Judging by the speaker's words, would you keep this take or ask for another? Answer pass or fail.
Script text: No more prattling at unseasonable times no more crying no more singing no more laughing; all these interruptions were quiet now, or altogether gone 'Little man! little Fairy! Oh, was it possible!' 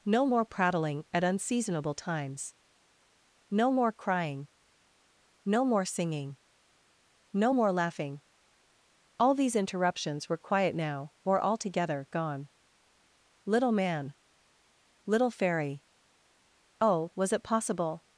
pass